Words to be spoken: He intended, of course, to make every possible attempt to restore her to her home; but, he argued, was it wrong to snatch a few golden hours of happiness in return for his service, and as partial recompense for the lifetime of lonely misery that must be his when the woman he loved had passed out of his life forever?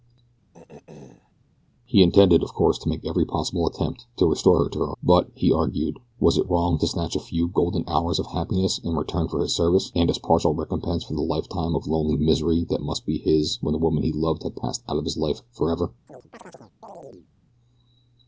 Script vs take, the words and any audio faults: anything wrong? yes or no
yes